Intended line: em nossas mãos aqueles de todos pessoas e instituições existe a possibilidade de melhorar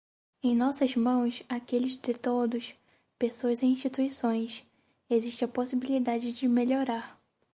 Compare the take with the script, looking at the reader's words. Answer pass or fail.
pass